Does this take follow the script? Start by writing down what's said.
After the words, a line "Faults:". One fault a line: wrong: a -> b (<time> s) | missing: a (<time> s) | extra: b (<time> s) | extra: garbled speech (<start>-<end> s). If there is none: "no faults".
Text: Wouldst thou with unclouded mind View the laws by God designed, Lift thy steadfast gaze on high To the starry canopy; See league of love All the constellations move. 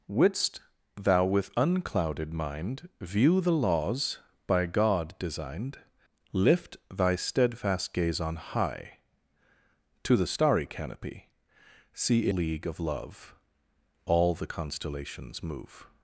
Wouldst thou with unclouded mind View the laws by God designed, Lift thy steadfast gaze on high To the starry canopy; See league of love All the constellations move.
Faults:
no faults